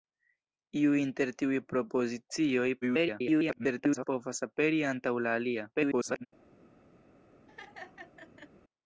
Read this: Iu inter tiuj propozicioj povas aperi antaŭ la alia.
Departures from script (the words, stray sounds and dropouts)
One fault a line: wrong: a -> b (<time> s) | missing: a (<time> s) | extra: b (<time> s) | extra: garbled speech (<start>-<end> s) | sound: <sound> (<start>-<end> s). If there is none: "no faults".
extra: garbled speech (2.8-4.1 s)
extra: garbled speech (5.7-6.3 s)
sound: laugh (7.5-8.5 s)